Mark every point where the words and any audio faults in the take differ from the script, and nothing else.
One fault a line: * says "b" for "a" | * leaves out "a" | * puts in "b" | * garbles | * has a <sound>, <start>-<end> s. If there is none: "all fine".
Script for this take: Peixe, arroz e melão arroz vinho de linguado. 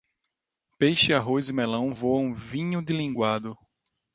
* says "voam" for "arroz"